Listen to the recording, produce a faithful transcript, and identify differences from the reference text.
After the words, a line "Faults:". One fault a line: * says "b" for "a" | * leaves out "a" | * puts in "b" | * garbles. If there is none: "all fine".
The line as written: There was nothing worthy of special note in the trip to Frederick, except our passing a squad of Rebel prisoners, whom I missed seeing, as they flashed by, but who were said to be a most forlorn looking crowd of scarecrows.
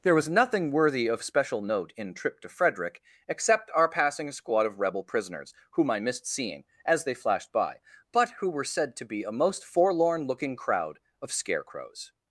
There was nothing worthy of special note in trip to Frederick, except our passing a squad of Rebel prisoners, whom I missed seeing, as they flashed by, but who were said to be a most forlorn looking crowd of scarecrows.
Faults:
* leaves out "the"